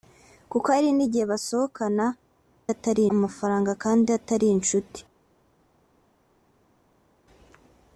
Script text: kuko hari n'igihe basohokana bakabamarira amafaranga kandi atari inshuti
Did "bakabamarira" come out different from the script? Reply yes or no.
yes